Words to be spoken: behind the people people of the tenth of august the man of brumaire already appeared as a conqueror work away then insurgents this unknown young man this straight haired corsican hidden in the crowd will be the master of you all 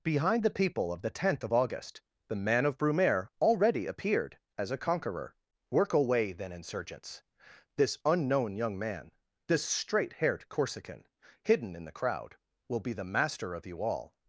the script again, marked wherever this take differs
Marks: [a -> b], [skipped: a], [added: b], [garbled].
behind the people [skipped: people] of the tenth of august the man of brumaire already appeared as a conqueror work away then insurgents this unknown young man this straight haired corsican hidden in the crowd will be the master of you all